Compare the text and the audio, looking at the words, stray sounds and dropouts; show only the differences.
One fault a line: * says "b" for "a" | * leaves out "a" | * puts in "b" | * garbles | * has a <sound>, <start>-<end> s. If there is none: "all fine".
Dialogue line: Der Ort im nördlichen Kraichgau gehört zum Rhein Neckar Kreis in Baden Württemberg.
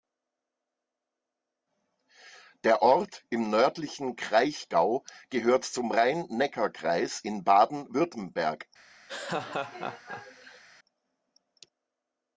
* has a laugh, 9.1-10.6 s